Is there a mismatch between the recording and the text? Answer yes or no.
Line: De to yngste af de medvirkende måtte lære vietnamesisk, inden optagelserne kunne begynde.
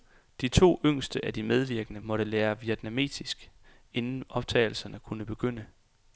no